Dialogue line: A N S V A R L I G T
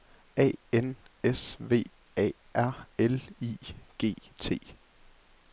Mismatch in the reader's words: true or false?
false